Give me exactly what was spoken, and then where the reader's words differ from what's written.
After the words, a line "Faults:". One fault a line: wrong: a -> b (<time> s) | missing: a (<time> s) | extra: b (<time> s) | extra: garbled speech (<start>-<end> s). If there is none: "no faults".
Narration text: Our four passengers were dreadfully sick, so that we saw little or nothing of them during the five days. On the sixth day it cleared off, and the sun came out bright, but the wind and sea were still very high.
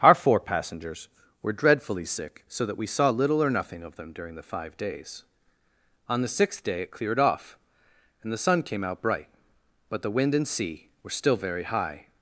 Our four passengers were dreadfully sick, so that we saw little or nothing of them during the five days. On the sixth day it cleared off, and the sun came out bright, but the wind and sea were still very high.
Faults:
no faults